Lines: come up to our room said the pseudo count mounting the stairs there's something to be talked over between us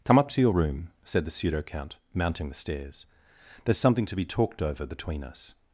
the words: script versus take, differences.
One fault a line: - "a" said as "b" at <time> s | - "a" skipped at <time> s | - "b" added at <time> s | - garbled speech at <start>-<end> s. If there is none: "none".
- "our" said as "your" at 0.4 s